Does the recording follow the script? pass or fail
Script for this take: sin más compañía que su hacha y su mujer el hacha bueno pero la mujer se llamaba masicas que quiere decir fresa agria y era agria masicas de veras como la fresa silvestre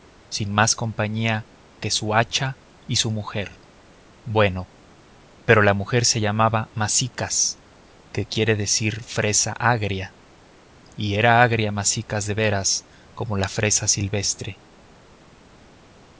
fail